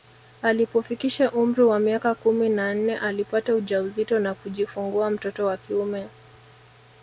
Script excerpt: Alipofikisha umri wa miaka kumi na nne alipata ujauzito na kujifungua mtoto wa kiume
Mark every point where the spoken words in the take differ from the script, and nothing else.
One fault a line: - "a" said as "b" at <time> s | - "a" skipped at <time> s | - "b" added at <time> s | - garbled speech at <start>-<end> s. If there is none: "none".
none